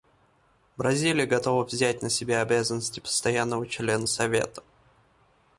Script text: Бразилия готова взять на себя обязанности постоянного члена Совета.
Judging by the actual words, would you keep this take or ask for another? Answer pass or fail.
pass